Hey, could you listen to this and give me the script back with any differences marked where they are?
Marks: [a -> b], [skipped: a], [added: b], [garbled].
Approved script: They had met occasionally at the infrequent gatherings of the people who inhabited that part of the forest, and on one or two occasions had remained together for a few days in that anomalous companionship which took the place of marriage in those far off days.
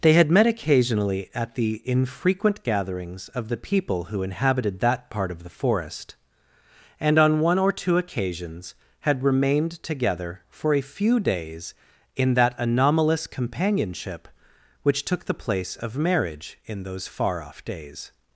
They had met occasionally at the infrequent gatherings of the people who inhabited that part of the forest, and on one or two occasions had remained together for a few days in that anomalous companionship which took the place of marriage in those far off days.